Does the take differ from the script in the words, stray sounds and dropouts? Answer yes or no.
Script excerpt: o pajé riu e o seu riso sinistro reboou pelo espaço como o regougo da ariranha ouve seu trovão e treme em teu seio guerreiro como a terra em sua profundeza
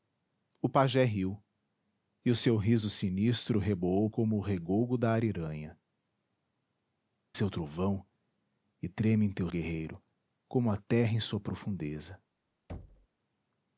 yes